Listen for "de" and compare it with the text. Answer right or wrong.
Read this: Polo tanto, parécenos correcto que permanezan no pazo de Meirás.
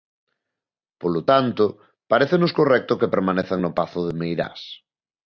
right